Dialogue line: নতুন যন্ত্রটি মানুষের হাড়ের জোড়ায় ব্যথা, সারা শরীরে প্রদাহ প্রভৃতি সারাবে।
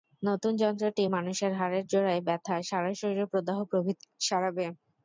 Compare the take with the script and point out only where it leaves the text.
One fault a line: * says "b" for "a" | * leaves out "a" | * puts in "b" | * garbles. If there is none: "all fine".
all fine